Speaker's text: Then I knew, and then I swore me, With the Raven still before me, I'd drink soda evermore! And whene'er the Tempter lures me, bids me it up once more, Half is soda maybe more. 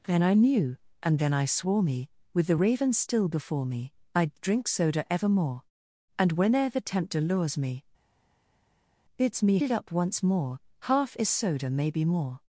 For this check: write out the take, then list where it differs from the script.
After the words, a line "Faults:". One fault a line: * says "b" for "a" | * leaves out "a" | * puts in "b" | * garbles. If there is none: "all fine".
Then I knew, and then I swore me, With the Raven still before me, I'd drink soda evermore! And whene'er the Tempter lures me, bids me it up once more, Half is soda maybe more.
Faults:
all fine